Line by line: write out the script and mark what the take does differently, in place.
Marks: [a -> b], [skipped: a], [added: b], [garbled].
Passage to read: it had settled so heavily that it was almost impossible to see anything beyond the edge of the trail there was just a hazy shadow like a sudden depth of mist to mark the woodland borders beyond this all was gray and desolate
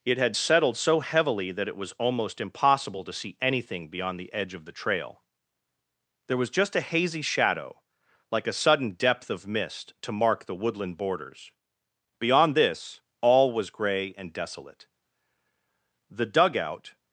it had settled so heavily that it was almost impossible to see anything beyond the edge of the trail there was just a hazy shadow like a sudden depth of mist to mark the woodland borders beyond this all was gray and desolate [added: the dugout]